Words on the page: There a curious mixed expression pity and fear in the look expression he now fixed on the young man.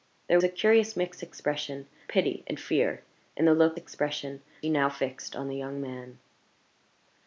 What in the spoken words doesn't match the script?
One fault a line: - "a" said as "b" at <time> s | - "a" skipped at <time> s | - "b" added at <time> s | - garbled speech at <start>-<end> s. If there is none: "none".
none